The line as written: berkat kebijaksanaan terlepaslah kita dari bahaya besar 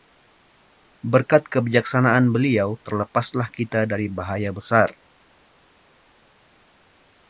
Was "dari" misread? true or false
false